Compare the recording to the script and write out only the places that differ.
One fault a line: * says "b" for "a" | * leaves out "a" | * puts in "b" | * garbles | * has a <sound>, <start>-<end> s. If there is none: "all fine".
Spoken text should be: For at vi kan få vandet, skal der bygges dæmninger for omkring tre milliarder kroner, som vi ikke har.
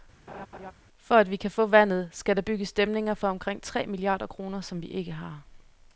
* has a laugh, 0.3-0.7 s